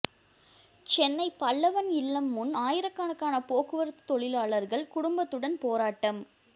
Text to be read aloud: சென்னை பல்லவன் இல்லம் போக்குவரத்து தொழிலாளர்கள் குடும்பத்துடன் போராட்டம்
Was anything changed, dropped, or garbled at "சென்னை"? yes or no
no